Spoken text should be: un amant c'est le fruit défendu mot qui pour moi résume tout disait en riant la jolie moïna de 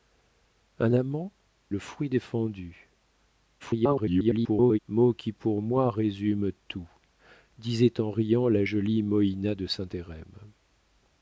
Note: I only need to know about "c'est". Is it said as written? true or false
false